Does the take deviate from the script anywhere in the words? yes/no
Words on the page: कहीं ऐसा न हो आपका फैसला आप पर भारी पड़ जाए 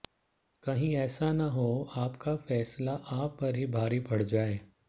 yes